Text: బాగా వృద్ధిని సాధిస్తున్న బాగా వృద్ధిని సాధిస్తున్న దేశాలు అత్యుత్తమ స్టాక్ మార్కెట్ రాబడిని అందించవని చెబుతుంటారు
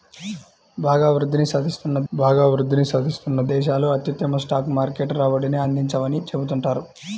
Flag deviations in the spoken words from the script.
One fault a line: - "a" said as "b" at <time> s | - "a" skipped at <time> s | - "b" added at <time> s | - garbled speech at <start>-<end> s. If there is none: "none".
none